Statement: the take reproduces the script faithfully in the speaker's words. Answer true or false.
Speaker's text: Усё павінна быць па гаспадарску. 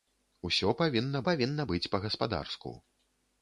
false